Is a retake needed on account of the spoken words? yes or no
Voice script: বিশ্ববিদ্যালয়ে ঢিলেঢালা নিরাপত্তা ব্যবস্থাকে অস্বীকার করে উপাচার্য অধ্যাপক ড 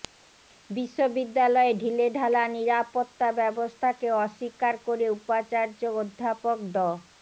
no